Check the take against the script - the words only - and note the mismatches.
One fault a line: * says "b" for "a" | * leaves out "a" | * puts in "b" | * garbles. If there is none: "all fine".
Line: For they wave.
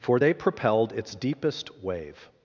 * puts in "propelled its deepest"